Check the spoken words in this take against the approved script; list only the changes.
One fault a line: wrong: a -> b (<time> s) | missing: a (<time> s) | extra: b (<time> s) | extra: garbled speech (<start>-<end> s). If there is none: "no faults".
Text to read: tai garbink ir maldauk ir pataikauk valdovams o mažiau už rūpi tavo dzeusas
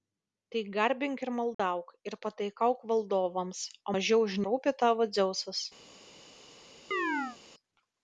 no faults